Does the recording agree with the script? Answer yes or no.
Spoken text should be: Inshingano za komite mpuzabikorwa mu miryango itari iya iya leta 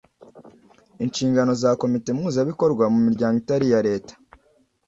no